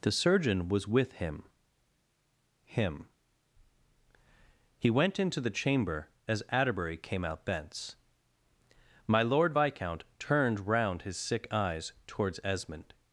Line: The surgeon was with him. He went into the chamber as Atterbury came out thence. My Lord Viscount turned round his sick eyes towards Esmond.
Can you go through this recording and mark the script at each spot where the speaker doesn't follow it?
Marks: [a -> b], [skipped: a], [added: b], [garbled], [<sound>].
The surgeon was with him. [added: him] He went into the chamber as Atterbury came out thence. My Lord Viscount turned round his sick eyes towards Esmond.